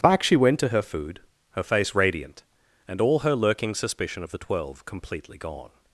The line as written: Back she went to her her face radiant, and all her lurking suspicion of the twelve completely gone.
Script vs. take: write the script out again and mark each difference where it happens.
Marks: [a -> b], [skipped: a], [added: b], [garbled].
Back she went to her [added: food] her face radiant, and all her lurking suspicion of the twelve completely gone.